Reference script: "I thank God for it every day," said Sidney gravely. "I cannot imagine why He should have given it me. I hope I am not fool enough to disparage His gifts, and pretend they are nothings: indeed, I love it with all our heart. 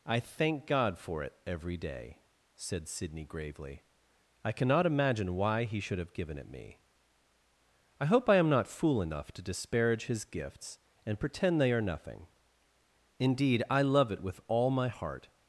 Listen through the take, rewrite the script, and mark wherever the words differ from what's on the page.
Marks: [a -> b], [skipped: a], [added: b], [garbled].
"I thank God for it every day," said Sidney gravely. "I cannot imagine why He should have given it me. I hope I am not fool enough to disparage His gifts, and pretend they are [nothings: -> nothing] indeed, I love it with all [our -> my] heart.